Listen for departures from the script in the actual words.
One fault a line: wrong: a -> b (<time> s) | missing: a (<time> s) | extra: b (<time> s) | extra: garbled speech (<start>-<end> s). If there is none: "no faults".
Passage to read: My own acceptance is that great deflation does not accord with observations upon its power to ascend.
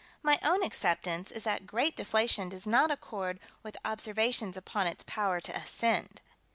no faults